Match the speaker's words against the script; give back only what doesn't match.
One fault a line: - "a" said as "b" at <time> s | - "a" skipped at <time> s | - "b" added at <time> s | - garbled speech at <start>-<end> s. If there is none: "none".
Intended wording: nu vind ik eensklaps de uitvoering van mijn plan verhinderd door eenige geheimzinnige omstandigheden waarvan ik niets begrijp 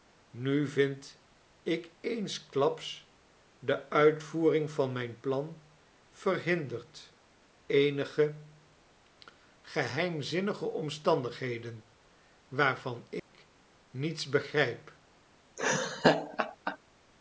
- "door" skipped at 7.2 s